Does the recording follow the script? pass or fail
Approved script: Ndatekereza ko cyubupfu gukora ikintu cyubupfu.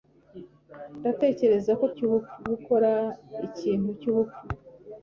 pass